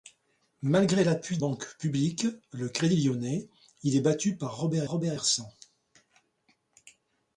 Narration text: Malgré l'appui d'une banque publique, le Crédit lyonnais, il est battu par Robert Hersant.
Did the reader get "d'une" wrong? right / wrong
wrong